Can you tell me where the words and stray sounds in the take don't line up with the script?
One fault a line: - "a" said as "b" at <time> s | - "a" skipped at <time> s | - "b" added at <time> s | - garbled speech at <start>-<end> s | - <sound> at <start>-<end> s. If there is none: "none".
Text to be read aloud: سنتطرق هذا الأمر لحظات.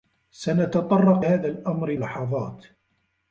none